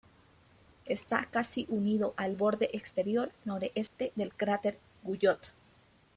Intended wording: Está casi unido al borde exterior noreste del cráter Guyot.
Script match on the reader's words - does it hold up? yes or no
yes